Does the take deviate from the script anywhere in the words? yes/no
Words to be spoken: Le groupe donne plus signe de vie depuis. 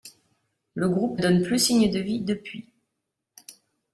no